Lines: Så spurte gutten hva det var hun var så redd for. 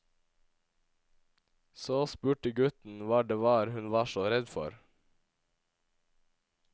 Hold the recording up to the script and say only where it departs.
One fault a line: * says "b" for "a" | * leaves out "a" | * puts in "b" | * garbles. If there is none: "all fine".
all fine